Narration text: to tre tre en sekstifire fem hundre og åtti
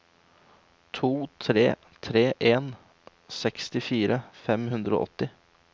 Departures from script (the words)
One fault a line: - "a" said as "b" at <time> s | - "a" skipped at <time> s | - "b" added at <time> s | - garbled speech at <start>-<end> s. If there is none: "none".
none